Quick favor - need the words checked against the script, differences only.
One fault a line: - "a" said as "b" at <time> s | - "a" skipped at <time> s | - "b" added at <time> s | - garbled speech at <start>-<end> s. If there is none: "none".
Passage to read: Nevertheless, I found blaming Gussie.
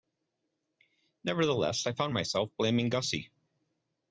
- "myself" added at 2.1 s